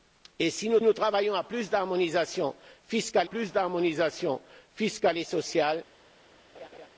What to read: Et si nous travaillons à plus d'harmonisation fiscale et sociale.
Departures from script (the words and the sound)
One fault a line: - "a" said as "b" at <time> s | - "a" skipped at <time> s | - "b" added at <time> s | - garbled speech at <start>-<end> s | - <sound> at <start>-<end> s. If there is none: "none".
- "nous" added at 0.8 s
- "plus d'harmonisation fiscale" added at 3.2 s
- laugh at 6.5-6.9 s